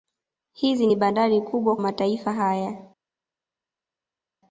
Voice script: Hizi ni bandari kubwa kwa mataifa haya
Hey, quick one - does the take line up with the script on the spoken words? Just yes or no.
no